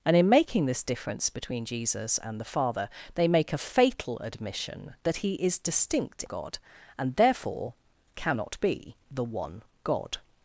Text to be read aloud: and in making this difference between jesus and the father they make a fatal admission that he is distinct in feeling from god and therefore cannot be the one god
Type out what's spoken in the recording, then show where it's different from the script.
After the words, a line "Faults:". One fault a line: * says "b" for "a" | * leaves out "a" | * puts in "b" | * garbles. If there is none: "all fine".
and in making this difference between jesus and the father they make a fatal admission that he is distinct god and therefore cannot be the one god
Faults:
* leaves out "in feeling from"